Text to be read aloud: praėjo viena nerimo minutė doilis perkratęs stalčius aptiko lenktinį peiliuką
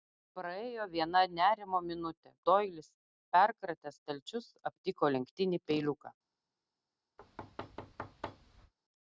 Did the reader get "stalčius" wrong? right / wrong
right